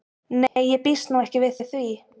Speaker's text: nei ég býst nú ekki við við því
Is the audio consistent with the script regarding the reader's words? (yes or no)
yes